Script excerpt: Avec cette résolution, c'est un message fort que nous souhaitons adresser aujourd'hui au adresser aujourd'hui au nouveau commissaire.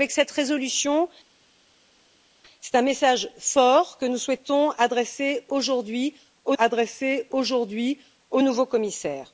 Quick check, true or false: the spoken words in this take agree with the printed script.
true